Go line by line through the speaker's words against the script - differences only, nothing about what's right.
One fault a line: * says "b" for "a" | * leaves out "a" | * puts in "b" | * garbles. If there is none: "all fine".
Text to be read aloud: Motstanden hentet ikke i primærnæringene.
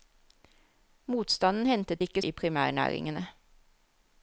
all fine